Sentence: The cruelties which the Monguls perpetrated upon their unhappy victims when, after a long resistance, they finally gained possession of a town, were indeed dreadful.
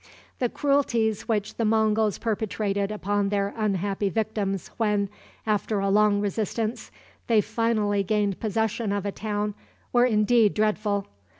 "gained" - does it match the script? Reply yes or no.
yes